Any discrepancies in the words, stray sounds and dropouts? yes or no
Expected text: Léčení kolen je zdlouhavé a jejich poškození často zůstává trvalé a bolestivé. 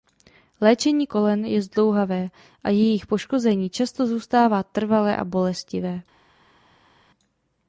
no